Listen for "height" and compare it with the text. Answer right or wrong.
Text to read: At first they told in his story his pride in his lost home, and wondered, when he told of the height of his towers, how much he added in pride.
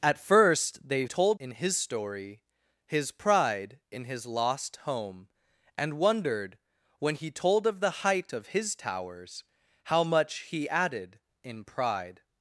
right